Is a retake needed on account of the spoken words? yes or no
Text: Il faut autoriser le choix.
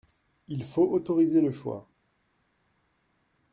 no